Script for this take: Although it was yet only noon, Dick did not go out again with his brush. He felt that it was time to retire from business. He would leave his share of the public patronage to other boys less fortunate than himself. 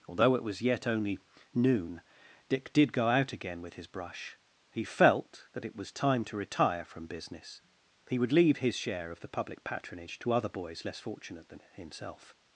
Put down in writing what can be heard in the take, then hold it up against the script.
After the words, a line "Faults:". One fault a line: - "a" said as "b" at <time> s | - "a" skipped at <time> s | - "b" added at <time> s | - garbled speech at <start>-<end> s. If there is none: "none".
Although it was yet only noon, Dick did go out again with his brush. He felt that it was time to retire from business. He would leave his share of the public patronage to other boys less fortunate than himself.
Faults:
- "not" skipped at 2.9 s